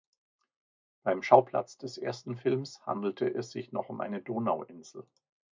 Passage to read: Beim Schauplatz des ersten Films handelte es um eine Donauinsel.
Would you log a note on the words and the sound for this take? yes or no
yes